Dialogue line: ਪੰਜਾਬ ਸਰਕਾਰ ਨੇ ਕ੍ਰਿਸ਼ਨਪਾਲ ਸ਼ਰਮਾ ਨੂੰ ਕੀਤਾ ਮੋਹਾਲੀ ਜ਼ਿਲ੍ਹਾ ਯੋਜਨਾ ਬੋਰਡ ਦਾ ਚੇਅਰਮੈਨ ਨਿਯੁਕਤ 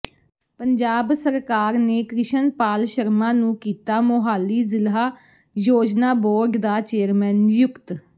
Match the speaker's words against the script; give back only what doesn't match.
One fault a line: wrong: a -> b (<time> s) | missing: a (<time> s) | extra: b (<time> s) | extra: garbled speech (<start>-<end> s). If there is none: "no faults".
no faults